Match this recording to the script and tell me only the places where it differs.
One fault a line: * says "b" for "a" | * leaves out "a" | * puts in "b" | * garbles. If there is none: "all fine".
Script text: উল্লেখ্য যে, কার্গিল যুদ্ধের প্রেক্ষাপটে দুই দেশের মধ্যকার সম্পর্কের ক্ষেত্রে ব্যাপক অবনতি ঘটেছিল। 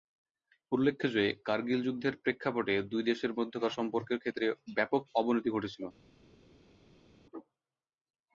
all fine